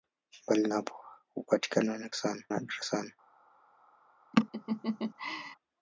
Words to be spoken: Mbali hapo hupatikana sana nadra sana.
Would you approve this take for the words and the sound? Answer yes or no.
no